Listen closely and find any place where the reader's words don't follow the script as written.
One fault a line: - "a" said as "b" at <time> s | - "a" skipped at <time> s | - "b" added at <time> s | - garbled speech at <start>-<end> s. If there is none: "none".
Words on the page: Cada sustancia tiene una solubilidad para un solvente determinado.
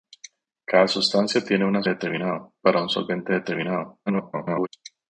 - "solubilidad" said as "determinado" at 1.9 s
- garbled speech at 4.1-4.7 s